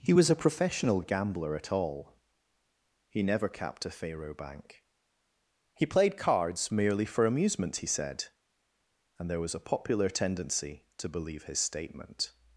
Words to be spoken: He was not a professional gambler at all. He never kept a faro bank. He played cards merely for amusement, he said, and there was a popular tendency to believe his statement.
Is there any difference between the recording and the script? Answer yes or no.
yes